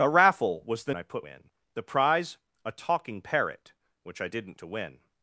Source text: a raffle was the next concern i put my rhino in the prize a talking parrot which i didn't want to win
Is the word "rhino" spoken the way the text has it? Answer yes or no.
no